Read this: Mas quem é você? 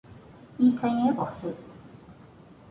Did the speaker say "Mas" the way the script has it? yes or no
no